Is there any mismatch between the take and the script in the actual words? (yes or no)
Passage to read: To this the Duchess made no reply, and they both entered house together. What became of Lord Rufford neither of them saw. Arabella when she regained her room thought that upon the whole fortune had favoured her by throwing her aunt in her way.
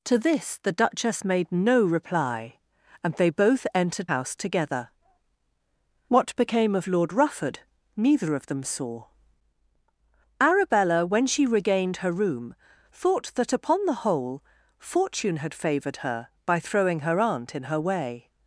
no